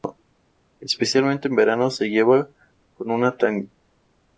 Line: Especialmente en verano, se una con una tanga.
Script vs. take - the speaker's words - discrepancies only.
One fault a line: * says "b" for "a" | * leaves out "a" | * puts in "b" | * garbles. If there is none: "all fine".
* says "lleva" for "una"